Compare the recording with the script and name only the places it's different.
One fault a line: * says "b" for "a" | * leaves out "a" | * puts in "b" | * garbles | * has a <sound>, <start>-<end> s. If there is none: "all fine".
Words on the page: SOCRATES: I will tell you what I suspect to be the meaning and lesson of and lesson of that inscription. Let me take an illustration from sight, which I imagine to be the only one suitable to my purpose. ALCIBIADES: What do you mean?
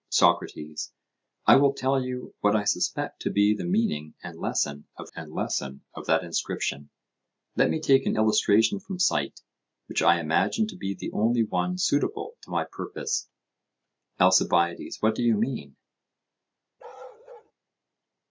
* has a bark, 16.8-17.5 s